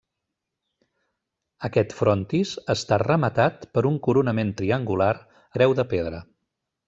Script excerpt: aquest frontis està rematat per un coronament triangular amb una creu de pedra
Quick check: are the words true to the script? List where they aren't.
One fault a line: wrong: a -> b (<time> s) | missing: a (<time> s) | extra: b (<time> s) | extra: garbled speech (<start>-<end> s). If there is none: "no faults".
missing: amb una (5.1 s)